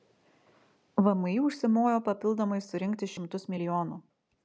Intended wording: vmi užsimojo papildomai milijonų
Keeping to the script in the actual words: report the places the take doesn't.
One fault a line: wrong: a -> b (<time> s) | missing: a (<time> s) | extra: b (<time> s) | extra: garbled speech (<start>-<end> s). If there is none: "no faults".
extra: surinkti šimtus (2.7 s)